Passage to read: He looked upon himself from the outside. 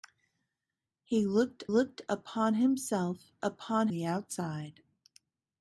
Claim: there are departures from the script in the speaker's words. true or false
true